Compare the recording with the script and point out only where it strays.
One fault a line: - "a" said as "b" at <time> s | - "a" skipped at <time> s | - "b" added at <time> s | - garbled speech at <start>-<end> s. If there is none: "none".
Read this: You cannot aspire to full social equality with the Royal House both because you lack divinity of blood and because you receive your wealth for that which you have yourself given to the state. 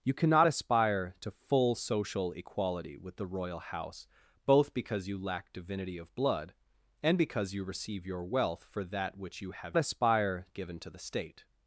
- "yourself" said as "aspire" at 9.8 s